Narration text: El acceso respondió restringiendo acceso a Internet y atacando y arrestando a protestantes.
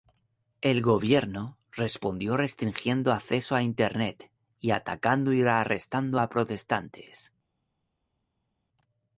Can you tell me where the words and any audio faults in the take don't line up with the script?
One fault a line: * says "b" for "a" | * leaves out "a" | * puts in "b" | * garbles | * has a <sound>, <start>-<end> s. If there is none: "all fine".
* says "gobierno" for "acceso"